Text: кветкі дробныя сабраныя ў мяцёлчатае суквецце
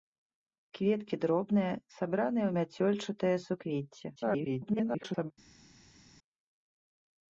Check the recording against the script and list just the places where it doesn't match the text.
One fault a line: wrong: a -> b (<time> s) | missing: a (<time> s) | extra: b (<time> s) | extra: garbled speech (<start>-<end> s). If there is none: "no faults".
extra: garbled speech (4.2-5.3 s)